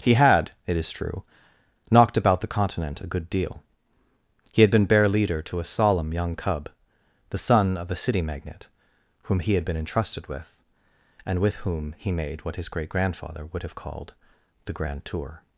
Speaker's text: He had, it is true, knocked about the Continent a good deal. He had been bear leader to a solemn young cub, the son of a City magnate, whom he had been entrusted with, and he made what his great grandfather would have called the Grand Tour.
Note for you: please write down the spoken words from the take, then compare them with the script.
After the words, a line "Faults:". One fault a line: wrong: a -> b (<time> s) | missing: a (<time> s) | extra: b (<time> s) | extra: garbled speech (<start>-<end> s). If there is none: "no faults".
He had, it is true, knocked about the Continent a good deal. He had been bear leader to a solemn young cub, the son of a City magnate, whom he had been entrusted with, and with whom he made what his great grandfather would have called the Grand Tour.
Faults:
extra: with whom (11.4 s)